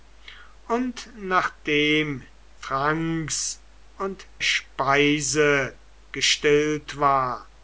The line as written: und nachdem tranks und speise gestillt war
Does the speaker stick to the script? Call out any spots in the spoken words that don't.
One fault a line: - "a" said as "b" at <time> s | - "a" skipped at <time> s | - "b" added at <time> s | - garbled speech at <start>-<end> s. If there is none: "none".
none